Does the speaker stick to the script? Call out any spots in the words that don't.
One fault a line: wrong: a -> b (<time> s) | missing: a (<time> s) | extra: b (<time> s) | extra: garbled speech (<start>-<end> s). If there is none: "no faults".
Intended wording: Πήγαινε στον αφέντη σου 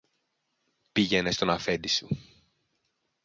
no faults